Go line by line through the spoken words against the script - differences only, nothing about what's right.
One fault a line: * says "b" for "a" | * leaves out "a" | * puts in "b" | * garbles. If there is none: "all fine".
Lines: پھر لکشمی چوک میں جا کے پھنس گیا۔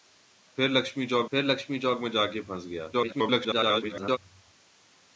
* puts in "پھر لکشمی چوک"
* garbles